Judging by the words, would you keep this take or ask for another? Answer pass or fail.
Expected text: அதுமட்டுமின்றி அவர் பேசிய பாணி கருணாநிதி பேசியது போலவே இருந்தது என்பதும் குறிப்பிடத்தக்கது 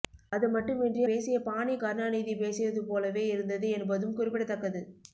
fail